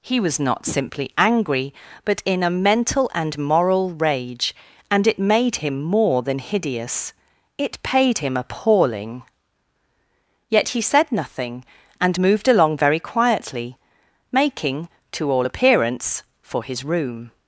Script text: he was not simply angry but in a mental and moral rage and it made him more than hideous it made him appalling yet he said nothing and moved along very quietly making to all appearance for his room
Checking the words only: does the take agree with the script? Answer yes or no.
no